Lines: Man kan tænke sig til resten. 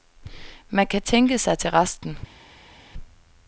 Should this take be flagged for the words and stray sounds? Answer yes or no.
no